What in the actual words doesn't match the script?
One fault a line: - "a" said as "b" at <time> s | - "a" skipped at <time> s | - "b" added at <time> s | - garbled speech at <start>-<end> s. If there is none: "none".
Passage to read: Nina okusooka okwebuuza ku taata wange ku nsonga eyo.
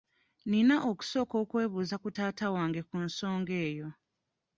none